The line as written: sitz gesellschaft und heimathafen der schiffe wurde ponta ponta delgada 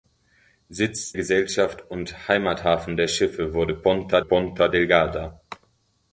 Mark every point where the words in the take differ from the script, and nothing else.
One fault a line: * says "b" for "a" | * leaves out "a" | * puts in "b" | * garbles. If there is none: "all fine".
all fine